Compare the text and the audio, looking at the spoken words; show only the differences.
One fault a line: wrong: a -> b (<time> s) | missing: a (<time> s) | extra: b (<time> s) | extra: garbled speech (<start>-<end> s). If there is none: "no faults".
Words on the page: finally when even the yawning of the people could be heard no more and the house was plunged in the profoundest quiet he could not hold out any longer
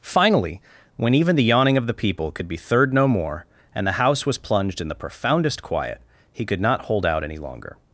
wrong: heard -> third (2.6 s)